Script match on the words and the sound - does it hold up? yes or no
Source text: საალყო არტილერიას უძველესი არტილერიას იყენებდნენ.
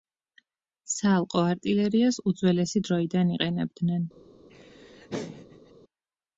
no